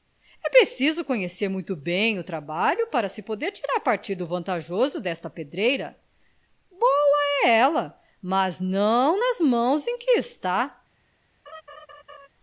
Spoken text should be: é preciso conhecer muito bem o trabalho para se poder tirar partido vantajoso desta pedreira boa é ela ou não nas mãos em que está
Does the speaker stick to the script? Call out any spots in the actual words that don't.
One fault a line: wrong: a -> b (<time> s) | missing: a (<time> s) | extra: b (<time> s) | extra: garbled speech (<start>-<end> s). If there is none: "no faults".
wrong: ou -> mas (8.2 s)